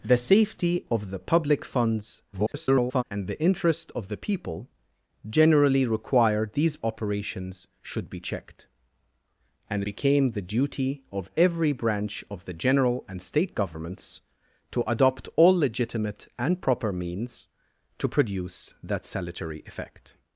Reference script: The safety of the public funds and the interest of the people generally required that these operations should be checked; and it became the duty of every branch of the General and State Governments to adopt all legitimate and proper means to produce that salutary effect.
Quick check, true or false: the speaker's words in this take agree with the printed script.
false